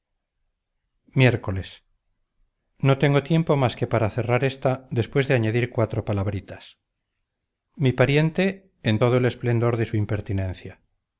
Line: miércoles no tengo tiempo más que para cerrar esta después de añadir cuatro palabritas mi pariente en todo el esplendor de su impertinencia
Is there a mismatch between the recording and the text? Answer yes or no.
no